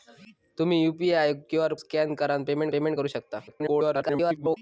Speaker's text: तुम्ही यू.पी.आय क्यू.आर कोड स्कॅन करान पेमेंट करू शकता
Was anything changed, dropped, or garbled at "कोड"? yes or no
yes